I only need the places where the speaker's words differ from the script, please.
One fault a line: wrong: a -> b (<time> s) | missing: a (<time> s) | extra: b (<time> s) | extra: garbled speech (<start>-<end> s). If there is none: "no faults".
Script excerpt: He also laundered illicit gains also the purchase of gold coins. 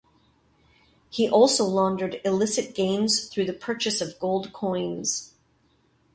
wrong: also -> through (3.2 s)